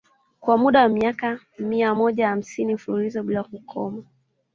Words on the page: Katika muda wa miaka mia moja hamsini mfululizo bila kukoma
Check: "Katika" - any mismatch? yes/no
yes